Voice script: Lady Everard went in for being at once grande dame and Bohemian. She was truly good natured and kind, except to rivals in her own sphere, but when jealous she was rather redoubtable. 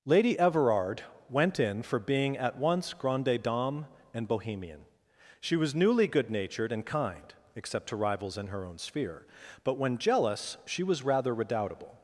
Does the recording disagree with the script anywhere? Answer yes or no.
yes